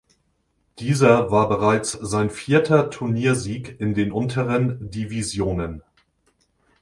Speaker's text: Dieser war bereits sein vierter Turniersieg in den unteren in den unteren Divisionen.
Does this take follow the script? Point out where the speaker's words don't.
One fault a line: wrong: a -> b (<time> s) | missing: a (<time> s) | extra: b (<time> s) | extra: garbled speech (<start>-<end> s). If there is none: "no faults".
missing: in den unteren (4.9 s)